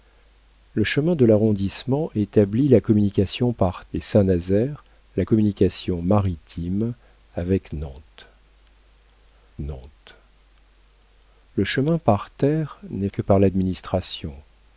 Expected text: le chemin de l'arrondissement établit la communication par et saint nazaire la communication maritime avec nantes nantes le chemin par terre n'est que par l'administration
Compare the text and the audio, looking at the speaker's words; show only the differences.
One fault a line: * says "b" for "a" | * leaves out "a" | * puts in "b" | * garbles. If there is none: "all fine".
all fine